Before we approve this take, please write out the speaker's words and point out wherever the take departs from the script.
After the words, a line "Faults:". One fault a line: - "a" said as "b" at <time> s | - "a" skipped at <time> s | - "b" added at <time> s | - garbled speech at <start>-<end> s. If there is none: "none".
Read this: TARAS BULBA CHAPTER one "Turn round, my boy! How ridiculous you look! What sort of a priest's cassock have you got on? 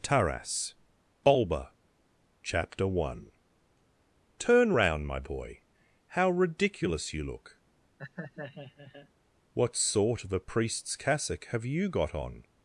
TARAS BULBA CHAPTER one "Turn round, my boy! How ridiculous you look! What sort of a priest's cassock have you got on?
Faults:
none